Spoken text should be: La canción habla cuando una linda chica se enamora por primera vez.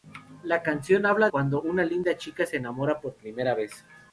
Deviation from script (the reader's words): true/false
false